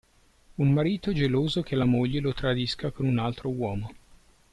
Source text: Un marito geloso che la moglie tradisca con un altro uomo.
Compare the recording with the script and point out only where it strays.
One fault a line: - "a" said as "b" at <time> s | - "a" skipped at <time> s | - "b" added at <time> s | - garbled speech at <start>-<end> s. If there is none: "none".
- "lo" added at 2.2 s